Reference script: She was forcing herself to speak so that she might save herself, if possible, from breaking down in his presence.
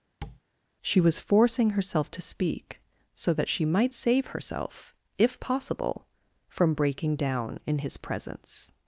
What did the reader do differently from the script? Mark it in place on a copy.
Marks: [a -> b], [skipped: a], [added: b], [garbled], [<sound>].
[tap] She was forcing herself to speak so that she might save herself, if possible, from breaking down in his presence.